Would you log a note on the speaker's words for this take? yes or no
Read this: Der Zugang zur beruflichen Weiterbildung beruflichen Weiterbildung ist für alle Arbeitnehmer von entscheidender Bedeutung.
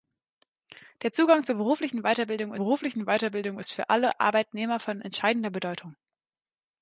no